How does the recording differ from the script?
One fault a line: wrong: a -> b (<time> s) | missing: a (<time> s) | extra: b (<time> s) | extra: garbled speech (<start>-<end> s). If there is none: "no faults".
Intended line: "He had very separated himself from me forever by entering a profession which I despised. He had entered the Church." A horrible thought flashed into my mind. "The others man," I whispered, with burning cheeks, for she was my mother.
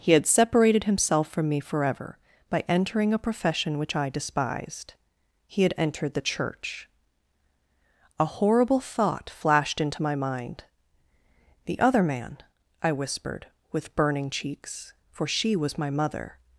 missing: very (0.2 s)
wrong: others -> other (11.8 s)